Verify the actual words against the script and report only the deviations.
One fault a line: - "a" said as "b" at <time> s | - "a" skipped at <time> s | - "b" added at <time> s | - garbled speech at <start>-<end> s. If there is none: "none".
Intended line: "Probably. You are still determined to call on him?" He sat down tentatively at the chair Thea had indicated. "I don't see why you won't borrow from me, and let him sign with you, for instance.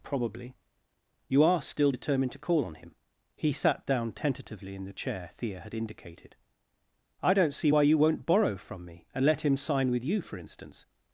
- "at" said as "in" at 4.7 s